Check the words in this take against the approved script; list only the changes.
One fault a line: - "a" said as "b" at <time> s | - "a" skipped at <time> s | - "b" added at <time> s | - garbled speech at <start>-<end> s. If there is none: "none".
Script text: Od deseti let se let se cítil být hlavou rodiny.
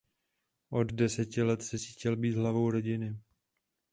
- "let se" skipped at 1.8 s